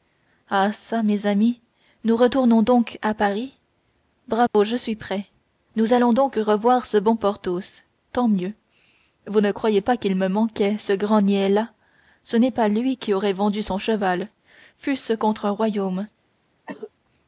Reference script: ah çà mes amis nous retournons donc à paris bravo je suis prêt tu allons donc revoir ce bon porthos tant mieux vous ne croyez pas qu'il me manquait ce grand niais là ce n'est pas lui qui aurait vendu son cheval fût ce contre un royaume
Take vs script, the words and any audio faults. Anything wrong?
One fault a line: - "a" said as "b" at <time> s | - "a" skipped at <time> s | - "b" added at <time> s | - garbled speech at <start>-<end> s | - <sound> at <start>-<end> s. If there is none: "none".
- dropout at 4.5-4.5 s
- "tu" said as "nous" at 5.8 s
- cough at 16.7-16.9 s